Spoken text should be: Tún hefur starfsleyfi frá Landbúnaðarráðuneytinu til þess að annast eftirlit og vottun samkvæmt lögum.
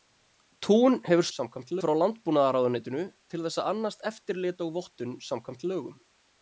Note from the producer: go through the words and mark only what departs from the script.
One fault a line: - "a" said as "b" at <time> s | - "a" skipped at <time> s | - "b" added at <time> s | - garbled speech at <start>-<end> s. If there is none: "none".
- "starfsleyfi" said as "samkvæmt" at 1.4 s